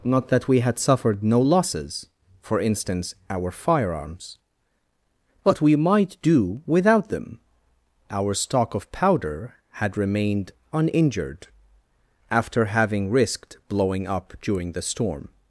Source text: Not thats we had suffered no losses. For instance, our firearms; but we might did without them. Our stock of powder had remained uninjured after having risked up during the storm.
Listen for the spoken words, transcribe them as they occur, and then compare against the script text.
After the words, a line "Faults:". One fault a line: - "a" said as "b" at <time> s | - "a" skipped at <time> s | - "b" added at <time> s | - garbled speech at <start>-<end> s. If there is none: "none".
Not that we had suffered no losses. For instance, our firearms; but we might do without them. Our stock of powder had remained uninjured after having risked blowing up during the storm.
Faults:
- "thats" said as "that" at 0.3 s
- "did" said as "do" at 6.2 s
- "blowing" added at 13.7 s